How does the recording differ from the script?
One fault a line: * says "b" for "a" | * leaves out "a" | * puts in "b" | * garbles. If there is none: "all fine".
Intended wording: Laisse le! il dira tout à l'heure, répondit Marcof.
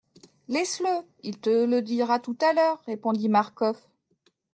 * puts in "te le"